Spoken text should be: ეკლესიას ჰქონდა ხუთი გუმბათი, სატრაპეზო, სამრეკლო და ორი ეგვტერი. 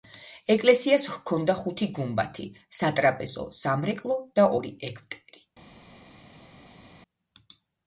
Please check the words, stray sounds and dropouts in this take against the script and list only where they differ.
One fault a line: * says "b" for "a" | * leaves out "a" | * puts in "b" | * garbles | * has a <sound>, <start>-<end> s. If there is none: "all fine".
all fine